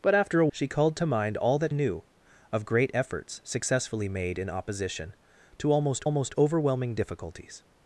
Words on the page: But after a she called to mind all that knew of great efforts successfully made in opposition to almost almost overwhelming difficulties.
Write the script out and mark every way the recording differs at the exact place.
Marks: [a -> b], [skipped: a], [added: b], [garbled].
But after a she called to mind all that knew of great efforts successfully made in opposition to almost almost overwhelming difficulties.